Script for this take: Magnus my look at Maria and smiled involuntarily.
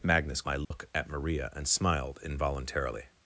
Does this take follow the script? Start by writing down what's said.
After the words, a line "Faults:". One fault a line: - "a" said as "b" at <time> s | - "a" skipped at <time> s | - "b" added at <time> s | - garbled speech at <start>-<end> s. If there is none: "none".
Magnus my look at Maria and smiled involuntarily.
Faults:
none